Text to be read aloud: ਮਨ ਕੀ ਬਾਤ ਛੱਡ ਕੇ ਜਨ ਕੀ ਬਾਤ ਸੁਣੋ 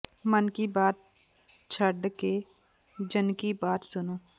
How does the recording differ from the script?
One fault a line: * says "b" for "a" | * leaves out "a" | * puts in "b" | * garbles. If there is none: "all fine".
all fine